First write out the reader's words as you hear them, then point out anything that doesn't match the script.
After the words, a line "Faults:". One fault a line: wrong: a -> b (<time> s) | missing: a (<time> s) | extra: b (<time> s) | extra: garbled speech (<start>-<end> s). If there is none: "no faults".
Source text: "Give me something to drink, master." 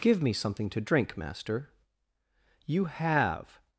"Give me something to drink, master." "You have
Faults:
extra: You have (2.6 s)